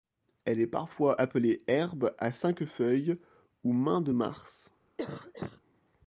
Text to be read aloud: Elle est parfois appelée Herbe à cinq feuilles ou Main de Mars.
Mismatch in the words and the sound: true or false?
true